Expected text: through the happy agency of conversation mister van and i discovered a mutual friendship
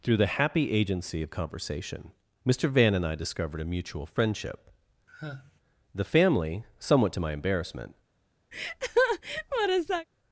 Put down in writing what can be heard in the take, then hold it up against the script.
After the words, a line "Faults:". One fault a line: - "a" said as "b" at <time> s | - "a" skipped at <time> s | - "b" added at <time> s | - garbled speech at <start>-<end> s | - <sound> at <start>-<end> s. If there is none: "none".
through the happy agency of conversation mister van and i discovered a mutual friendship the family somewhat to my embarrassment
Faults:
- sigh at 5.1-5.6 s
- "the family somewhat to my embarrassment" added at 5.9 s
- laugh at 8.5-10.1 s